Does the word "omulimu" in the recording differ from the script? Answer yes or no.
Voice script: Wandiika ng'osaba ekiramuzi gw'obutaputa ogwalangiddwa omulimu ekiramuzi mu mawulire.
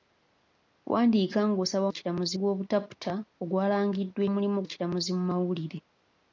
no